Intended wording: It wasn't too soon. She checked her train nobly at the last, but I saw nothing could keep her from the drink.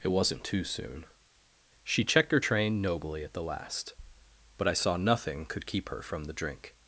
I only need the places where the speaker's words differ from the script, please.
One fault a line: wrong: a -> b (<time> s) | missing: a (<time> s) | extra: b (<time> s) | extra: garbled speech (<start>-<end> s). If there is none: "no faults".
no faults